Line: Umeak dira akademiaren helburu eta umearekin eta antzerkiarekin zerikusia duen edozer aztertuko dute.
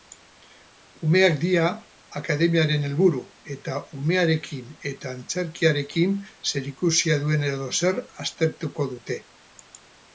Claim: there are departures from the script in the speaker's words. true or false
false